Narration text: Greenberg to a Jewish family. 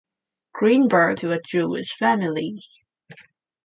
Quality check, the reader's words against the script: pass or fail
pass